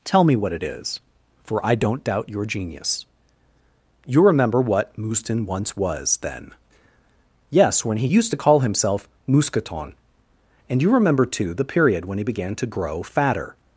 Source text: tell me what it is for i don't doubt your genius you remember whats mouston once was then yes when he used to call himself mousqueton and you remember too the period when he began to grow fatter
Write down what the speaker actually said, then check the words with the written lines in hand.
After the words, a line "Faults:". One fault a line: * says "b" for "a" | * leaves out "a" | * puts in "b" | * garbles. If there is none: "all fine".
tell me what it is for i don't doubt your genius you remember what mouston once was then yes when he used to call himself mousqueton and you remember too the period when he began to grow fatter
Faults:
* says "what" for "whats"